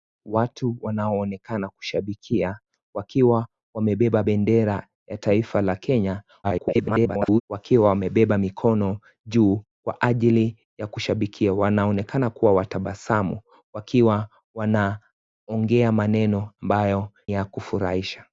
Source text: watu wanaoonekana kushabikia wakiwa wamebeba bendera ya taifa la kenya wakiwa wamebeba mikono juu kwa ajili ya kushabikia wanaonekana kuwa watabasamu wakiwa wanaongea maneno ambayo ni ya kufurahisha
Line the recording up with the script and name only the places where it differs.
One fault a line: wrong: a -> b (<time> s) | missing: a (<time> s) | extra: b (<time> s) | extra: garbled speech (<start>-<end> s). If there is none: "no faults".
extra: garbled speech (6.4-7.4 s)
missing: ni (17.1 s)